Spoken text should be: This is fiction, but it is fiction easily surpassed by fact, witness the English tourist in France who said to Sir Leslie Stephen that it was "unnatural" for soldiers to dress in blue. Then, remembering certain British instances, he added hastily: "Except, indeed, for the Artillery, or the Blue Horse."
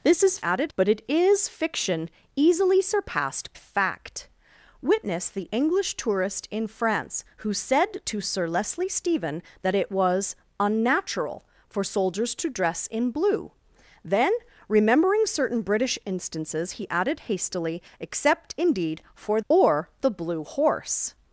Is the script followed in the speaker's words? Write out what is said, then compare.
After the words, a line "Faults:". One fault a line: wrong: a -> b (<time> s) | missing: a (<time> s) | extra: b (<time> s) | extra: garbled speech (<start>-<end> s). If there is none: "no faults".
This is added, but it is fiction easily surpassed fact, witness the English tourist in France who said to Sir Leslie Stephen that it was "unnatural" for soldiers to dress in blue. Then, remembering certain British instances, he added hastily: "Except, indeed, for or the Blue Horse."
Faults:
wrong: fiction -> added (0.4 s)
missing: by (3.5 s)
missing: the Artillery (19.4 s)